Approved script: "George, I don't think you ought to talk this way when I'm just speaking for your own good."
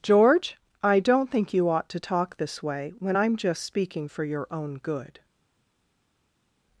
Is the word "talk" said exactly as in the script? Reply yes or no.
yes